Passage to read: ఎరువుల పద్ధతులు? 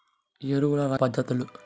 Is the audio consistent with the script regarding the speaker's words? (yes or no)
yes